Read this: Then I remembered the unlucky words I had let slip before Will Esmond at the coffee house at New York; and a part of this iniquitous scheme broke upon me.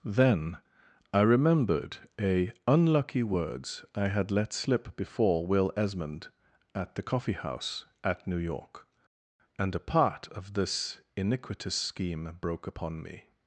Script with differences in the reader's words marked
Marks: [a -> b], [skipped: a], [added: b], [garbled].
Then I remembered [the -> a] unlucky words I had let slip before Will Esmond at the coffee house at New York; and a part of this iniquitous scheme broke upon me.